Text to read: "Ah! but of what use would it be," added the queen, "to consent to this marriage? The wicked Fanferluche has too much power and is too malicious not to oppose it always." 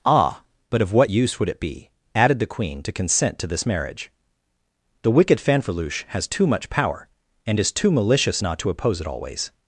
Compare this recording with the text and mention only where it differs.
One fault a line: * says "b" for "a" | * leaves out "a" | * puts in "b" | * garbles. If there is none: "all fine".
all fine